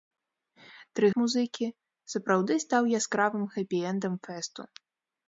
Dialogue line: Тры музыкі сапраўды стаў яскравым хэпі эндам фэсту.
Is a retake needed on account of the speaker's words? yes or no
no